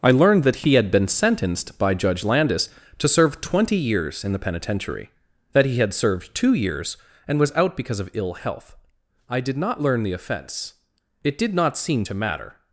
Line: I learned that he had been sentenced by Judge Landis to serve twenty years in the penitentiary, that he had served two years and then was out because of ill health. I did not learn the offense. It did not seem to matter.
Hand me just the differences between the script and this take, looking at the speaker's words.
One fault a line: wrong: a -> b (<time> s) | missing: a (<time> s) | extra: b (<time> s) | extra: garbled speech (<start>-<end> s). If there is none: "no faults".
missing: then (7.4 s)